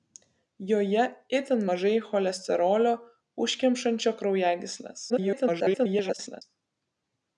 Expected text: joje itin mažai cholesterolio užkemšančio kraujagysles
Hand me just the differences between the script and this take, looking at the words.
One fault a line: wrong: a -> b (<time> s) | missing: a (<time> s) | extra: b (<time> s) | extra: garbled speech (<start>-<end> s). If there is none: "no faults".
extra: garbled speech (5.1-6.4 s)